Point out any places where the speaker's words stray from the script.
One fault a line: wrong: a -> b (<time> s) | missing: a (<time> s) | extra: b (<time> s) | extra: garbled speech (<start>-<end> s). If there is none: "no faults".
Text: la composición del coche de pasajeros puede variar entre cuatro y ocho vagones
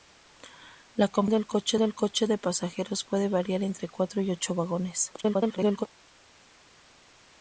extra: garbled speech (5.2-5.9 s)